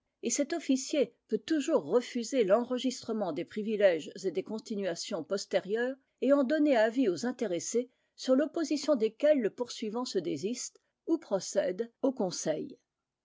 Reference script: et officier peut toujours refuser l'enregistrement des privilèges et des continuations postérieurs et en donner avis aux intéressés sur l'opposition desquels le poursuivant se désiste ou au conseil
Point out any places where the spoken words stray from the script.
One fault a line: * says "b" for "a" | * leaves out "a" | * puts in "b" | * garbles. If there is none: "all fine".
* puts in "cet"
* puts in "procède"